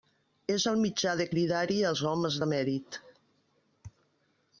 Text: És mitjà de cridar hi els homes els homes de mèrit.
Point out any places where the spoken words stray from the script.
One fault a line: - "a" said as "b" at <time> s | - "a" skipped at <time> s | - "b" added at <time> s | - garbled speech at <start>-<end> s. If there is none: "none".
- "el" added at 0.7 s
- "els homes" skipped at 2.4 s